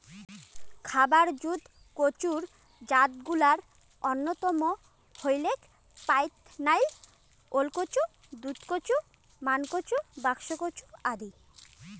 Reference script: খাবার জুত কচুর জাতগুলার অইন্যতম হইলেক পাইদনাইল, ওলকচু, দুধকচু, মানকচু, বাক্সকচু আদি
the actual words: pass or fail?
pass